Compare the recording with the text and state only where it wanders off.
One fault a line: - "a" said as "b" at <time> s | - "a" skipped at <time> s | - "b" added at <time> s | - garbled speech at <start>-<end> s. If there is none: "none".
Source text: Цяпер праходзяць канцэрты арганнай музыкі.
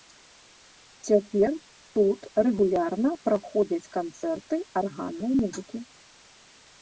- "тут рэгулярна" added at 2.0 s